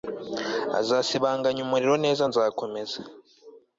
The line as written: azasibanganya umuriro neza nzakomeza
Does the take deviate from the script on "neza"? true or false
false